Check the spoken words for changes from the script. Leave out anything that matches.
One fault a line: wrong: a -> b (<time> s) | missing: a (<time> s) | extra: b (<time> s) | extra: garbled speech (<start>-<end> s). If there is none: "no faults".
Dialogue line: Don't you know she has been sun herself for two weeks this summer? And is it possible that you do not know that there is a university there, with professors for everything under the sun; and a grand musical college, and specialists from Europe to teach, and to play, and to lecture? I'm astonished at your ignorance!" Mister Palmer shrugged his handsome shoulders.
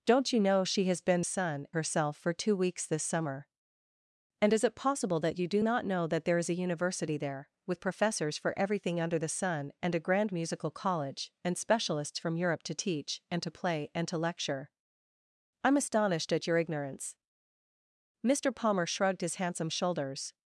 no faults